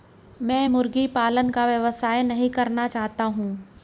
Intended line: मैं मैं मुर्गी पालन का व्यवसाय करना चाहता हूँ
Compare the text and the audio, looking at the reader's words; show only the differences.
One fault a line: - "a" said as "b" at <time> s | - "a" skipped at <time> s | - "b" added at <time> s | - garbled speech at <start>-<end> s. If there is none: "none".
- "मैं" skipped at 0.7 s
- "नहीं" added at 2.2 s